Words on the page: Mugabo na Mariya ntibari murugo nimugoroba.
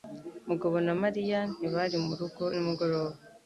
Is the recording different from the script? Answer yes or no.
no